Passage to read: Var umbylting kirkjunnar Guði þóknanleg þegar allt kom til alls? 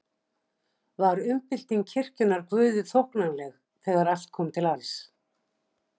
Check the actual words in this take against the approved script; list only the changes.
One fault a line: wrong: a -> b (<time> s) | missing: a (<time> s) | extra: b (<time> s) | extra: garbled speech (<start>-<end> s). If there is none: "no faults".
no faults